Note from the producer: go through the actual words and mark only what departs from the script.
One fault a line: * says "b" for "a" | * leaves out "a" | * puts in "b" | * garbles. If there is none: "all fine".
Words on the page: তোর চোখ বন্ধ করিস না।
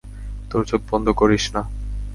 all fine